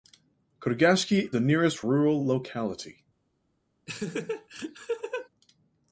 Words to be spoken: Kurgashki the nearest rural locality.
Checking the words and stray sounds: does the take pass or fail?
fail